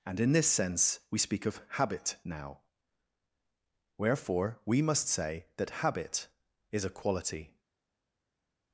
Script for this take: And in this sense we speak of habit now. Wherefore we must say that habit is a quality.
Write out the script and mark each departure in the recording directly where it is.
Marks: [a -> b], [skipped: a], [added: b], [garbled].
And in this sense we speak of habit now. Wherefore we must say that habit is a quality.